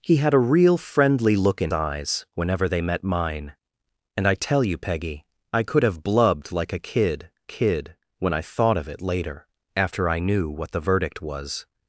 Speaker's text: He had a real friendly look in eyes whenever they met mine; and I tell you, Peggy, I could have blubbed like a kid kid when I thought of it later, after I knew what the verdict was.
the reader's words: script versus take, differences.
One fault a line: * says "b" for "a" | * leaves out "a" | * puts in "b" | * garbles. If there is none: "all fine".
all fine